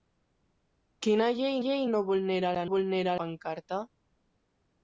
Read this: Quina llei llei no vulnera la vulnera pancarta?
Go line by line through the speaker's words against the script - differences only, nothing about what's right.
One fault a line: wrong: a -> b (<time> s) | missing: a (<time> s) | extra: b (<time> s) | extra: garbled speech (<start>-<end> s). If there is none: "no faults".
no faults